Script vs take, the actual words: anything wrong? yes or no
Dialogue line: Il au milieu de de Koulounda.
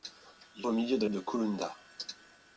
no